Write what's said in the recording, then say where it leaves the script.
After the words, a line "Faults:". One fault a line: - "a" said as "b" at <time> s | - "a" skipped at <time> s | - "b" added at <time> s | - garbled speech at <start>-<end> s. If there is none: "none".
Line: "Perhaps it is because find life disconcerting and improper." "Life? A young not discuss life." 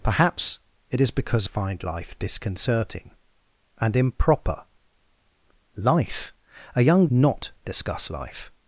"Perhaps it is because find life disconcerting and improper." "Life? A young not discuss life."
Faults:
none